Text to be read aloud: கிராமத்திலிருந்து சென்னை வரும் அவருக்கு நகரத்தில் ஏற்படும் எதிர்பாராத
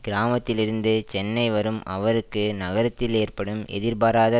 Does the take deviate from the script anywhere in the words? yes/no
no